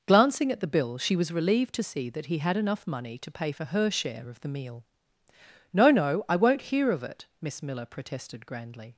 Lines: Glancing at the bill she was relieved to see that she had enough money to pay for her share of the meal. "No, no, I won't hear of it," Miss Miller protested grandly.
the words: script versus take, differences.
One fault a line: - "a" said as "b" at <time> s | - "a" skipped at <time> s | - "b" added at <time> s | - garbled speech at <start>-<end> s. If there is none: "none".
- "she" said as "he" at 2.2 s